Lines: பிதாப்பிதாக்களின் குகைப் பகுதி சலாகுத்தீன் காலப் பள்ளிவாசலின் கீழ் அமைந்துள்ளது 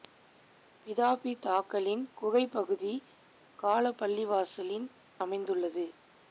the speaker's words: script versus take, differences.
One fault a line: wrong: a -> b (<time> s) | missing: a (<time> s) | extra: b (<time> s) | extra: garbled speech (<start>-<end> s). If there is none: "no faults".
missing: சலாகுத்தீன் (2.9 s)
missing: கீழ் (4.9 s)